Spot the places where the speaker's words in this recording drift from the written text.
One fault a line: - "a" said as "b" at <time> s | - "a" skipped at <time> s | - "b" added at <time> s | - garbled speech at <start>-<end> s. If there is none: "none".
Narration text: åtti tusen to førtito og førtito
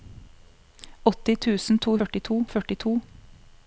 none